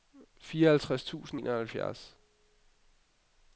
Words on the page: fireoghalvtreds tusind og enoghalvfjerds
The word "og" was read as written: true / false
false